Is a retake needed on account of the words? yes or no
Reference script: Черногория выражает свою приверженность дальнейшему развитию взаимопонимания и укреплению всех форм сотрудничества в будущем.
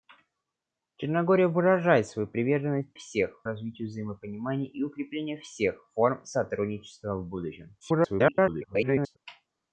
yes